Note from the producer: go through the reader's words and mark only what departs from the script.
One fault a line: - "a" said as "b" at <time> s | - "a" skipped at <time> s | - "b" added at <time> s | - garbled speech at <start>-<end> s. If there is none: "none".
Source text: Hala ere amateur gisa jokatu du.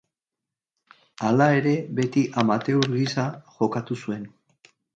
- "beti" added at 2.0 s
- "du" said as "zuen" at 4.1 s